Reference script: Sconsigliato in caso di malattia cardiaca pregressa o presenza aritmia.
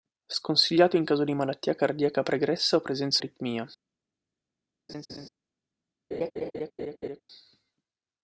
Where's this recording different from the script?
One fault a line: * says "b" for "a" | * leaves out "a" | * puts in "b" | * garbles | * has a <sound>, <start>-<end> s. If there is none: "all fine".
* has a laugh, 4.9-5.3 s
* has a laugh, 6.1-7.2 s